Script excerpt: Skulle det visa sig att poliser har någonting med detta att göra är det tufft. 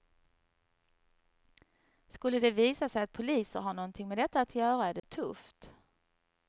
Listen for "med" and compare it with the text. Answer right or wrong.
right